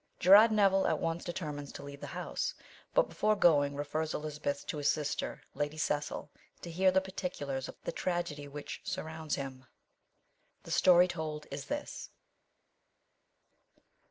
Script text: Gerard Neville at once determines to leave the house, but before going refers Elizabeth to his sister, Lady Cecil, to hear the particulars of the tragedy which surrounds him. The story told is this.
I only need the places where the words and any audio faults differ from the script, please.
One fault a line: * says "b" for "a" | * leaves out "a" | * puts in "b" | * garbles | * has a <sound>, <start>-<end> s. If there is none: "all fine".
all fine